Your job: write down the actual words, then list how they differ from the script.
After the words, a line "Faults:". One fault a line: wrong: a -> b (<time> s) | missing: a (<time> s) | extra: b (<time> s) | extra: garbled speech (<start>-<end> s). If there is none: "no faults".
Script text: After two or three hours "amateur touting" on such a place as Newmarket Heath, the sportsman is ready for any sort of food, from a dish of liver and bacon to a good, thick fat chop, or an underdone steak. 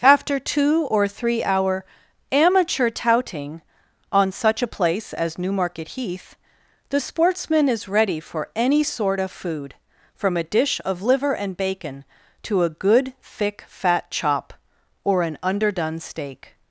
After two or three hour "amateur touting" on such a place as Newmarket Heath, the sportsman is ready for any sort of food, from a dish of liver and bacon to a good, thick fat chop, or an underdone steak.
Faults:
wrong: hours -> hour (1.4 s)